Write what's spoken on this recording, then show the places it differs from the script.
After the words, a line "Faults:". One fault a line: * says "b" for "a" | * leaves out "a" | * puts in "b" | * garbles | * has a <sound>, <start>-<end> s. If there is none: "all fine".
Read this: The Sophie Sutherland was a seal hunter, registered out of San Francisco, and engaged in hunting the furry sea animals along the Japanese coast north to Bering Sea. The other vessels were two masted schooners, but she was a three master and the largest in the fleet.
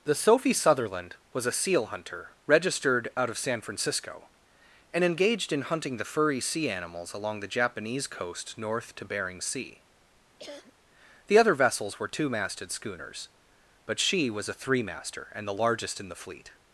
The Sophie Sutherland was a seal hunter, registered out of San Francisco, and engaged in hunting the furry sea animals along the Japanese coast north to Bering Sea. The other vessels were two masted schooners, but she was a three master and the largest in the fleet.
Faults:
* has a cough, 10.4-10.7 s